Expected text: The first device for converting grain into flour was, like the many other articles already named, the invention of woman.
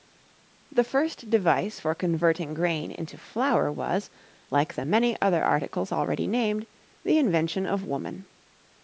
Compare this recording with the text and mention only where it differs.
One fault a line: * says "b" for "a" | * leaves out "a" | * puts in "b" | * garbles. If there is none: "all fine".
all fine